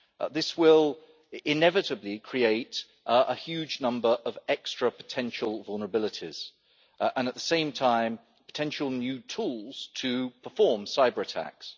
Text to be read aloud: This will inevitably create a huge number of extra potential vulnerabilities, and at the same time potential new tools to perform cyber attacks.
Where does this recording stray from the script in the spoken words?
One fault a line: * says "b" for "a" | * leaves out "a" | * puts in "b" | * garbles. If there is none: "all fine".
all fine